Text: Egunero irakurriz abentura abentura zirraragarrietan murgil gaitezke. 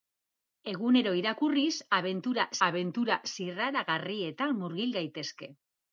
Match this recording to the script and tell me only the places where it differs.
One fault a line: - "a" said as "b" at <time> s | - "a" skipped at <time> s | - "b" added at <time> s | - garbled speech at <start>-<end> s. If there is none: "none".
none